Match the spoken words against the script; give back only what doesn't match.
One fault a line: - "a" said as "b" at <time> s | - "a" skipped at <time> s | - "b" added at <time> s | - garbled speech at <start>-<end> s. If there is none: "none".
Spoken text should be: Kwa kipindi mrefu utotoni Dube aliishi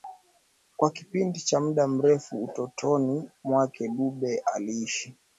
- "cha muda" added at 1.4 s
- "mwake" added at 3.4 s